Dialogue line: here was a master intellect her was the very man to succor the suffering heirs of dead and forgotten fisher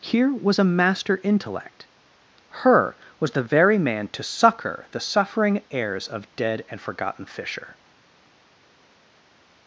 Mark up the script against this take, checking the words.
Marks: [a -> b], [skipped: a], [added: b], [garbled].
here was a master intellect her was the very man to succor the suffering heirs of dead and forgotten fisher